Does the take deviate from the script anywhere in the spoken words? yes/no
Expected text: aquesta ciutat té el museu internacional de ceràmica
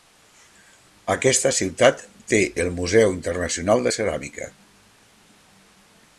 no